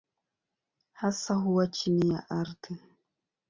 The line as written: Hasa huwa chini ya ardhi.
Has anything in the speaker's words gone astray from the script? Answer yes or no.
no